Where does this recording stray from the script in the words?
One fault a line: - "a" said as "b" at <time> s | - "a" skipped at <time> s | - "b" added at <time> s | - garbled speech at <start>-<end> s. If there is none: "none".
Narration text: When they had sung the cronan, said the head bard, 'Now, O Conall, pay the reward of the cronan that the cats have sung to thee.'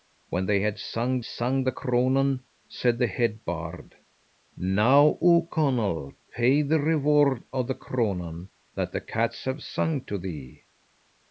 - "sung" added at 1.2 s